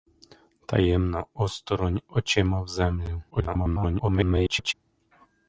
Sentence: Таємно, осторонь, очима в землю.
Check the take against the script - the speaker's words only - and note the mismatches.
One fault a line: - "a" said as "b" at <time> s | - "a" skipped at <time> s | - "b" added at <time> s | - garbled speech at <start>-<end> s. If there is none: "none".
- garbled speech at 3.3-4.7 s